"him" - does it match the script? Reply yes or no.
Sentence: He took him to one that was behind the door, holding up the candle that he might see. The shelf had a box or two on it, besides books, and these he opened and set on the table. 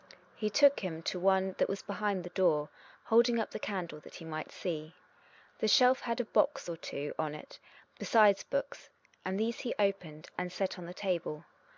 yes